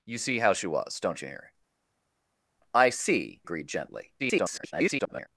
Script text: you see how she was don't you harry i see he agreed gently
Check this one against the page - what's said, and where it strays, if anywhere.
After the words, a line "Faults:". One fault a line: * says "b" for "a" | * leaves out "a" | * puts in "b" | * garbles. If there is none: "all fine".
you see how she was don't you harry i see agreed gently [garbled]
Faults:
* leaves out "he"
* garbles